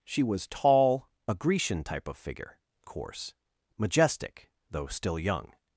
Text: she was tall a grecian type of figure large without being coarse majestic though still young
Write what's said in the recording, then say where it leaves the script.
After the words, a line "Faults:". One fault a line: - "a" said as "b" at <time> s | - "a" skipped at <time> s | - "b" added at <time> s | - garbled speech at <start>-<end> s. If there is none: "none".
she was tall a grecian type of figure coarse majestic though still young
Faults:
- "large without being" skipped at 2.6 s